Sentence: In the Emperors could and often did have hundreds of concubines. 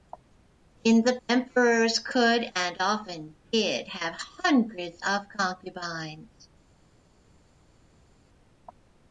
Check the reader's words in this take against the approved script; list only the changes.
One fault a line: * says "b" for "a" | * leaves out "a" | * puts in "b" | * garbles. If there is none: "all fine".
all fine